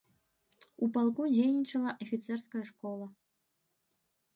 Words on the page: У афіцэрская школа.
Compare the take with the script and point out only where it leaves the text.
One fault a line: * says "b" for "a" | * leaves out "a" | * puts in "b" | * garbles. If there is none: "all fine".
* puts in "палку дзейнічала"